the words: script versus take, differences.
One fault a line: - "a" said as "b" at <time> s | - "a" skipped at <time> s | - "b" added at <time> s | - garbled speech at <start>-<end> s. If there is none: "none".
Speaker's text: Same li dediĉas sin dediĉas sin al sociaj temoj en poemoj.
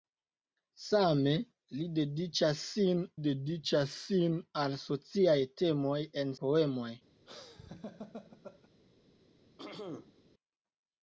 none